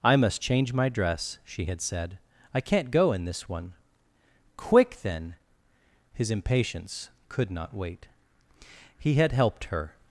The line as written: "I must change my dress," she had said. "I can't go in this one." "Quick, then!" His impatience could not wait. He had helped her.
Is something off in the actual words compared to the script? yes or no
no